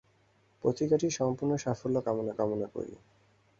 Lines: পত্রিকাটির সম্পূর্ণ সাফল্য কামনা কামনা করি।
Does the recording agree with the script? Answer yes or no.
yes